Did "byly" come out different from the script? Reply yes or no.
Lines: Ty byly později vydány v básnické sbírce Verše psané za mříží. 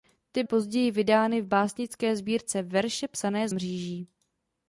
yes